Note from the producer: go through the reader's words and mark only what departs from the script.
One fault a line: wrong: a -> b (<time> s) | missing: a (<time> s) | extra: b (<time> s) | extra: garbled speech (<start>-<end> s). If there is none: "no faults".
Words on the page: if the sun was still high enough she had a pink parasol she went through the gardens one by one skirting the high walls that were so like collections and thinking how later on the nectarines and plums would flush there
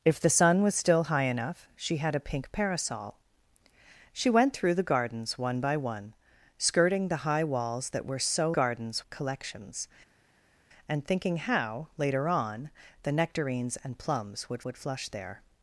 wrong: like -> gardens (8.6 s)
extra: would (14.6 s)